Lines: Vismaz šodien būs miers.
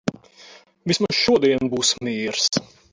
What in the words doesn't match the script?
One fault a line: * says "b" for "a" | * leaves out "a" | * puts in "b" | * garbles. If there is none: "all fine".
all fine